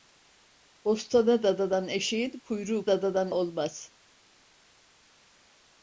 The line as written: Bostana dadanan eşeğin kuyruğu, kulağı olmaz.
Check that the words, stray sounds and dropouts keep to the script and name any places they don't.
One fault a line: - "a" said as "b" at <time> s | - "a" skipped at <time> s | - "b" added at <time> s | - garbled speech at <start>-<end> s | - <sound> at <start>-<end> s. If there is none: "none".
- "kulağı" said as "dadanan" at 2.9 s